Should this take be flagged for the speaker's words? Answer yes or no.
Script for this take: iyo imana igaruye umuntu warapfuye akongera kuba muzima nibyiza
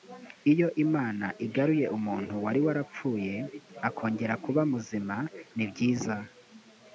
yes